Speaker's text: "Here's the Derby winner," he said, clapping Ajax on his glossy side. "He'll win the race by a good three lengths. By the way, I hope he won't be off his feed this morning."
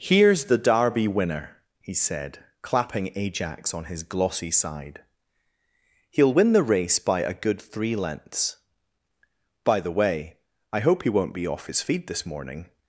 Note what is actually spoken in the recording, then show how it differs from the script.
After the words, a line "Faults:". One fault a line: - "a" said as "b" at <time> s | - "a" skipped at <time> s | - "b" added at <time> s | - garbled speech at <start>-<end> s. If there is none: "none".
"Here's the Derby winner," he said, clapping Ajax on his glossy side. "He'll win the race by a good three lengths. By the way, I hope he won't be off his feed this morning."
Faults:
none